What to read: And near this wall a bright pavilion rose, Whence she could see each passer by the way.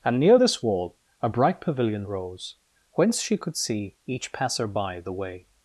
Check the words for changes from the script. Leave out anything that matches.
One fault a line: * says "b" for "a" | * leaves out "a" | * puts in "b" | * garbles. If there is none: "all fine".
all fine